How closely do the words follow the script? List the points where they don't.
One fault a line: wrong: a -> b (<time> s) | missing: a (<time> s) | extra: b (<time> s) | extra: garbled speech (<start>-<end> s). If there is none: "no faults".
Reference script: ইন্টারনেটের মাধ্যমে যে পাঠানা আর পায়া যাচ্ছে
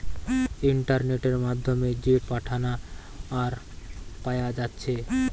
no faults